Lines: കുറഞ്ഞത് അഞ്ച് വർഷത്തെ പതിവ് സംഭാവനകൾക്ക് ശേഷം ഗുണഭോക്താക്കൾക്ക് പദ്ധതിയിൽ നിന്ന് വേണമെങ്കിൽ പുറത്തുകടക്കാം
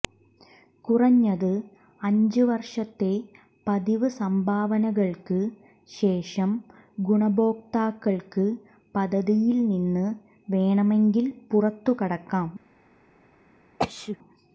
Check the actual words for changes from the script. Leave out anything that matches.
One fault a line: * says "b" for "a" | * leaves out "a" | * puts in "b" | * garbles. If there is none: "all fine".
all fine